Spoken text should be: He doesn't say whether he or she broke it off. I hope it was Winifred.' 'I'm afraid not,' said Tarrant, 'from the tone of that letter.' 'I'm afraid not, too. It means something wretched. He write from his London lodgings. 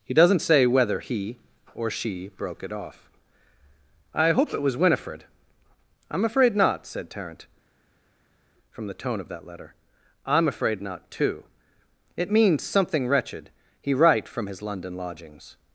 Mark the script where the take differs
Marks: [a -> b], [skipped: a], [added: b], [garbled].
He doesn't say whether he or she broke it off. I hope it was Winifred.' 'I'm afraid not,' said Tarrant, 'from the tone of that letter.' 'I'm afraid not, too. It means something wretched. He write from his London lodgings.